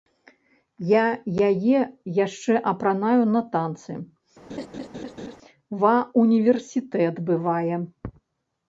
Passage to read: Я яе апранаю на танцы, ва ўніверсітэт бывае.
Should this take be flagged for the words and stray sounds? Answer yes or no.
yes